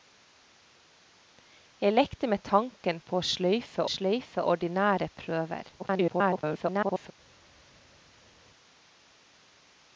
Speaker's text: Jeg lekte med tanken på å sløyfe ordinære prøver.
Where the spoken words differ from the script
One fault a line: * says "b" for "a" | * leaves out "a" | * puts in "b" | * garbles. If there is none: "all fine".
* puts in "sløyfe"
* garbles